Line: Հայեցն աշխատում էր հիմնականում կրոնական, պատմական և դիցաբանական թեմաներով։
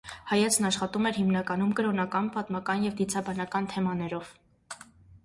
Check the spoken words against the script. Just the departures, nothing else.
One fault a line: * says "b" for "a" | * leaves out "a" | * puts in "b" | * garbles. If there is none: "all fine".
all fine